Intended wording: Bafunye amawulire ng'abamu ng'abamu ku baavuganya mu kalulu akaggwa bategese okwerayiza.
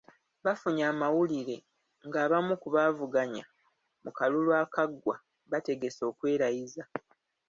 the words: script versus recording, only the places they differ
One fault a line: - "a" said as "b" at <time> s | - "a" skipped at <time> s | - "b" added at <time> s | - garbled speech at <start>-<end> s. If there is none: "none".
- "ng'abamu" skipped at 2.5 s